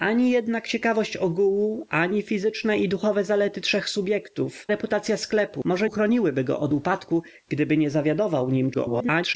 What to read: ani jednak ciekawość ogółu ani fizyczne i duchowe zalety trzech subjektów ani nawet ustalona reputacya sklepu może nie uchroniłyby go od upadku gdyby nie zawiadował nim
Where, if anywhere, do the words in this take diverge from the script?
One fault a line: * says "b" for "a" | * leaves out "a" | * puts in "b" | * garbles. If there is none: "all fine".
* leaves out "ani nawet ustalona"
* leaves out "nie"
* garbles